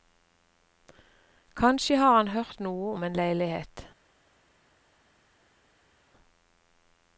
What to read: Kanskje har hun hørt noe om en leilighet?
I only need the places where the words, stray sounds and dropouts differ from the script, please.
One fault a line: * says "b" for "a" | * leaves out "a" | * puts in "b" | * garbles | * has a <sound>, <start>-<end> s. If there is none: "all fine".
* says "han" for "hun"